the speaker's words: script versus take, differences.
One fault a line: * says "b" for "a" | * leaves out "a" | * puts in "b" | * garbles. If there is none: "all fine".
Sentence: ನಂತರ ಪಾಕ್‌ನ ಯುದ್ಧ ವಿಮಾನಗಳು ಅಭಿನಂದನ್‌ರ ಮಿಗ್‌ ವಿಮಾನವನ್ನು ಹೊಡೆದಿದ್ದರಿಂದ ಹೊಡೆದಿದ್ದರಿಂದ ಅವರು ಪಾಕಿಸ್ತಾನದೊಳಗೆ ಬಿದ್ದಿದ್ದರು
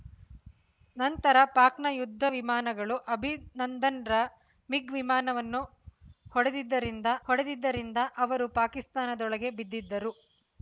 all fine